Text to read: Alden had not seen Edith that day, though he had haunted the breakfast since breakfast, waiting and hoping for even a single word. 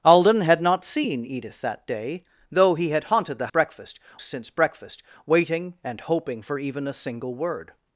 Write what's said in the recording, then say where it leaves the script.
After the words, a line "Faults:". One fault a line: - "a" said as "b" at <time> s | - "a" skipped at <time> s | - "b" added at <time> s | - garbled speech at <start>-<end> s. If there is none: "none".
Alden had not seen Edith that day, though he had haunted the breakfast since breakfast, waiting and hoping for even a single word.
Faults:
none